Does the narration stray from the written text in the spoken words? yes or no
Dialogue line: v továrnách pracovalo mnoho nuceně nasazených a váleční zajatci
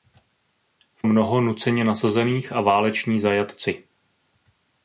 yes